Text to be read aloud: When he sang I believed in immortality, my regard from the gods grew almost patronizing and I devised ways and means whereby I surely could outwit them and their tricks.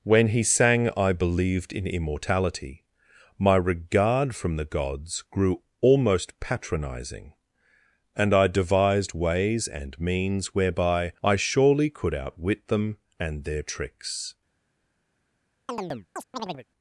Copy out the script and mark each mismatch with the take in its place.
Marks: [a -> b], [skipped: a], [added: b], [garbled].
When he sang I believed in immortality, my regard from the gods grew almost patronizing and I devised ways and means whereby I surely could outwit them and their tricks.